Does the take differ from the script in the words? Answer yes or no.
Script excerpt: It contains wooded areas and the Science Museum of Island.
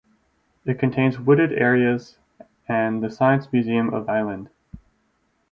no